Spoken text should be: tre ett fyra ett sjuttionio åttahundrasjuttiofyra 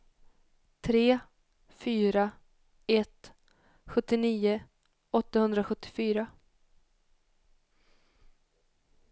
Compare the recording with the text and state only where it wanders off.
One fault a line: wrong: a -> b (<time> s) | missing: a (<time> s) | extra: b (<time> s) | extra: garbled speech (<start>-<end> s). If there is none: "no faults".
missing: ett (1.2 s)